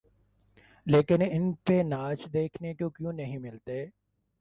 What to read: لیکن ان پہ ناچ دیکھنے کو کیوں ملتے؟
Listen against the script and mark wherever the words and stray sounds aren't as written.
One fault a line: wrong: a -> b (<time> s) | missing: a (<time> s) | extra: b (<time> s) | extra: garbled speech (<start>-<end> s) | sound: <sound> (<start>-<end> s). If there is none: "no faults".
extra: نہیں (3.1 s)